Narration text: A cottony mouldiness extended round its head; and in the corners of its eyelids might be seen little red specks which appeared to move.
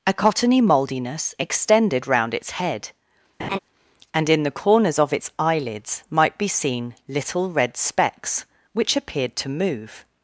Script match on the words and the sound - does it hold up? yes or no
no